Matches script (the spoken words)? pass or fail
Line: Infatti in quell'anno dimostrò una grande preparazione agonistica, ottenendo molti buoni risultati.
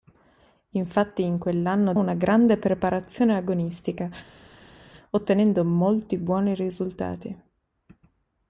fail